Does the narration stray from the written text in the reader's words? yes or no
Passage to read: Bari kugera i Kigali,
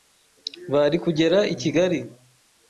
no